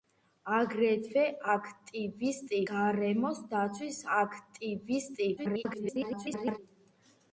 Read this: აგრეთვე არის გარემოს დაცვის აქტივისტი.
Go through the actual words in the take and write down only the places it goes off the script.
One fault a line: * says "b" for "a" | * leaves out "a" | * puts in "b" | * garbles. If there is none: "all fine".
* says "აქტივისტი" for "არის"
* garbles